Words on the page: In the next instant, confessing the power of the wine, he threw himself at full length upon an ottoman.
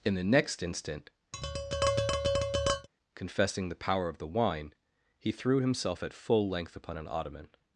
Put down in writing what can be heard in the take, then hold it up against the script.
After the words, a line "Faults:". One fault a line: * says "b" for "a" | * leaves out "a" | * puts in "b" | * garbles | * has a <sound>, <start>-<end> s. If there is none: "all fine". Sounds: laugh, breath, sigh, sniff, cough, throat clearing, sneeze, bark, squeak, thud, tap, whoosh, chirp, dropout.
In the next instant, confessing the power of the wine, he threw himself at full length upon an ottoman.
Faults:
* has a tap, 1.3-2.9 s